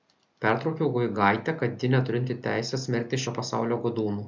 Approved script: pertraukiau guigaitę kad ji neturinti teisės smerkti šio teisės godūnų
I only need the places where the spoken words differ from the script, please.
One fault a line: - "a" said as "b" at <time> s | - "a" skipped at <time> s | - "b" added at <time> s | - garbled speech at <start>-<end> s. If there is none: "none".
- "teisės" said as "pasaulio" at 3.4 s